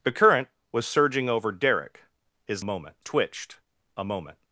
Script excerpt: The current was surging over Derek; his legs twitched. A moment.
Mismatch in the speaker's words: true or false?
true